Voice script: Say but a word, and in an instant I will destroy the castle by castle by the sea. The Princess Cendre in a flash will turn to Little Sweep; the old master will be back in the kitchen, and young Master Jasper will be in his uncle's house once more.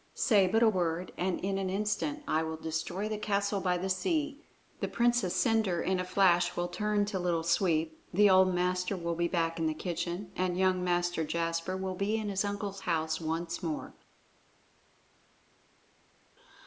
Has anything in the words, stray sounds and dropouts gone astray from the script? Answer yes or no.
yes